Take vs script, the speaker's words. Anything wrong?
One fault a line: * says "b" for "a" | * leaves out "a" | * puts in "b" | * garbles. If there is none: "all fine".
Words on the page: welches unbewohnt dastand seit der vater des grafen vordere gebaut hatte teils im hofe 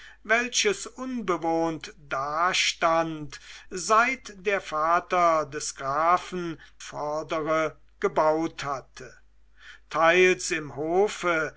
all fine